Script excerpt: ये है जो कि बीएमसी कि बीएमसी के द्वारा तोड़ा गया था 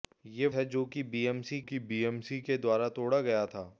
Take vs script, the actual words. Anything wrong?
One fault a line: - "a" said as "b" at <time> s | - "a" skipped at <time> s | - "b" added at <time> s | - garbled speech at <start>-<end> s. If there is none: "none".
none